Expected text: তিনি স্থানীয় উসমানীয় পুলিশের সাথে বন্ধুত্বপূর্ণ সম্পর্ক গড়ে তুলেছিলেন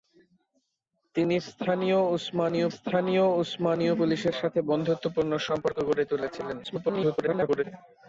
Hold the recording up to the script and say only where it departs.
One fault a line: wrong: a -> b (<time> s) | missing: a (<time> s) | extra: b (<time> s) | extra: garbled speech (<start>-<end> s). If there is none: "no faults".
extra: স্থানীয় উসমানীয় (2.7 s)
extra: garbled speech (6.6-7.6 s)